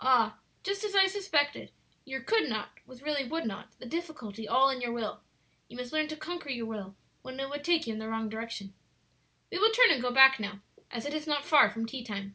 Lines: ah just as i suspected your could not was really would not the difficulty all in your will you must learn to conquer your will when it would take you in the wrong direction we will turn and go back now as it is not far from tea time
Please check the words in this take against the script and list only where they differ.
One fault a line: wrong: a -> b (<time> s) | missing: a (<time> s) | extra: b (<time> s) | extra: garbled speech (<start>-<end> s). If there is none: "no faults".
no faults